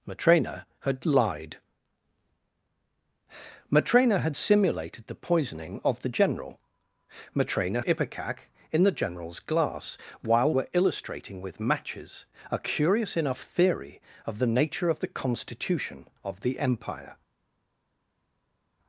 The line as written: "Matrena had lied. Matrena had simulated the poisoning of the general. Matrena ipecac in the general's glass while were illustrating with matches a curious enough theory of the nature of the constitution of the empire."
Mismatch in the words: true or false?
false